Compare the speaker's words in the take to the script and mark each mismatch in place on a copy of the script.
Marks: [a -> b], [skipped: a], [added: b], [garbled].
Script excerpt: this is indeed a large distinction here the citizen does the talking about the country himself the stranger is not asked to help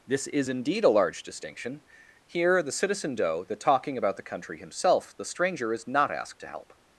this is indeed a large distinction here the citizen [does -> doe] the talking about the country himself the stranger is not asked to help